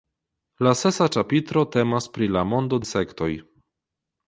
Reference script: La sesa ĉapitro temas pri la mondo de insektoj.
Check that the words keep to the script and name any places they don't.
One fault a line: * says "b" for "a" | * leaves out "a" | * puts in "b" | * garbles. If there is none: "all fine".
* leaves out "de"